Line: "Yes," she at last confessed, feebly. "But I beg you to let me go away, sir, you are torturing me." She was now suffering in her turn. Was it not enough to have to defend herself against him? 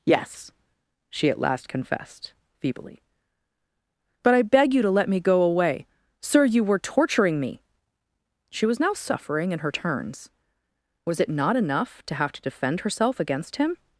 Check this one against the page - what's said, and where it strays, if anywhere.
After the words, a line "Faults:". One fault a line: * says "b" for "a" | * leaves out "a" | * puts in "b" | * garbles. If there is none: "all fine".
"Yes," she at last confessed, feebly. "But I beg you to let me go away, sir, you were torturing me." She was now suffering in her turns. Was it not enough to have to defend herself against him?
Faults:
* says "were" for "are"
* says "turns" for "turn"